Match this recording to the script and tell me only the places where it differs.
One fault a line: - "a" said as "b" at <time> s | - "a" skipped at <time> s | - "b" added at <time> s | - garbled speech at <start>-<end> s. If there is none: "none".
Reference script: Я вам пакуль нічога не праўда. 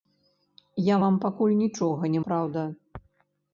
none